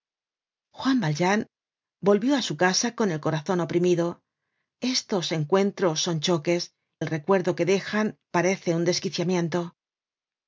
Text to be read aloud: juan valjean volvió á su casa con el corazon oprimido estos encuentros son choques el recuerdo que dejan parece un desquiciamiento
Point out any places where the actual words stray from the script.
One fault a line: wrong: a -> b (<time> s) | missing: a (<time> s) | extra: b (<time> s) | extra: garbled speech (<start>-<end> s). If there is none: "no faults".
no faults